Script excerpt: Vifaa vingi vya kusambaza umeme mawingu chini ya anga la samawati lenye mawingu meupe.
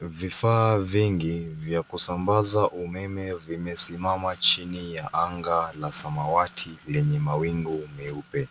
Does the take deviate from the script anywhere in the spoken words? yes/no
yes